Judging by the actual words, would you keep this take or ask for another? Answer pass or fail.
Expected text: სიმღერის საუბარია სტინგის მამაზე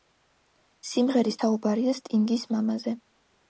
pass